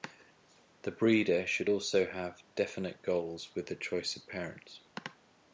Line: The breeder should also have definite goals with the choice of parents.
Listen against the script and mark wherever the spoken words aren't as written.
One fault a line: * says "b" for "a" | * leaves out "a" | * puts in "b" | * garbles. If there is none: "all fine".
all fine